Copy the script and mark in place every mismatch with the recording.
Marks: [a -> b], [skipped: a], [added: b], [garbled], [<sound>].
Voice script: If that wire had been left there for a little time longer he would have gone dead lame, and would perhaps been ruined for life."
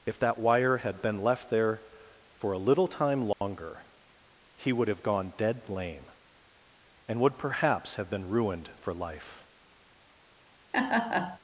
If that wire had been left there for a little time longer [dropout] he would have gone dead lame, and would perhaps [added: have] been ruined for life." [laugh]